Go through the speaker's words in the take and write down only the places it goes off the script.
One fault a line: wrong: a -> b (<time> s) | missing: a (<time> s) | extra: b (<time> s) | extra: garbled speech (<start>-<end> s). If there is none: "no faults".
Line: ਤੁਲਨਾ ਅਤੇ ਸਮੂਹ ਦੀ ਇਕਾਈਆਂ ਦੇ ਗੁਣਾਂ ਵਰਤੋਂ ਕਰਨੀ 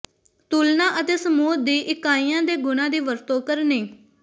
extra: ਦੀ (2.9 s)